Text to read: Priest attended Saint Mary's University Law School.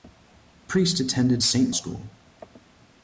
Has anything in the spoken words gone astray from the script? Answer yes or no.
yes